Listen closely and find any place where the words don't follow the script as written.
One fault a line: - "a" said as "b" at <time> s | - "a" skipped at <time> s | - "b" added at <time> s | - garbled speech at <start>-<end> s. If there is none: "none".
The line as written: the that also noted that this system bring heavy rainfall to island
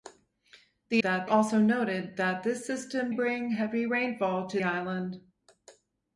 none